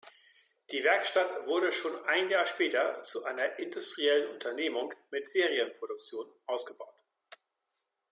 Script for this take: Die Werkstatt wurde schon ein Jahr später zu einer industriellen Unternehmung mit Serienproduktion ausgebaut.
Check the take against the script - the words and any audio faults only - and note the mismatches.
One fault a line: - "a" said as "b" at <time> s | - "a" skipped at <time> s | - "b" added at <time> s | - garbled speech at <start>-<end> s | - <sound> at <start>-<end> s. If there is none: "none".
none